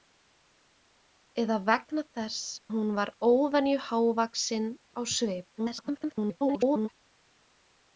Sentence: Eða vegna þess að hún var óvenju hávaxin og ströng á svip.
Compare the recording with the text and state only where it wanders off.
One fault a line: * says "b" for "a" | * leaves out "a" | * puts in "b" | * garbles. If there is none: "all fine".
* leaves out "að"
* leaves out "og ströng"
* garbles